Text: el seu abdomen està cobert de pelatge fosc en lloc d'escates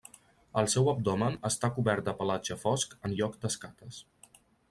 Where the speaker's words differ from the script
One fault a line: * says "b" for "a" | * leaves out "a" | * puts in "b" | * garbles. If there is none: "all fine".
all fine